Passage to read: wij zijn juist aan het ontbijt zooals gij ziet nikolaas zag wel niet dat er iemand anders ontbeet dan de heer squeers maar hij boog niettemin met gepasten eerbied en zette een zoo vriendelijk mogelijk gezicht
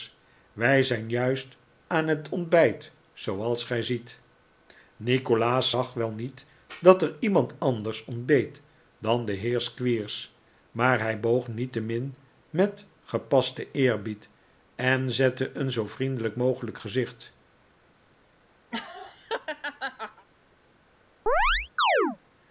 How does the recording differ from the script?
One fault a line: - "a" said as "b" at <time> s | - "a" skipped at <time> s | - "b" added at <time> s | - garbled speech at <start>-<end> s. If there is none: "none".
none